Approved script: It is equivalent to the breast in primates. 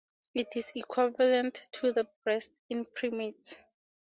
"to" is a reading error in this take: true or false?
false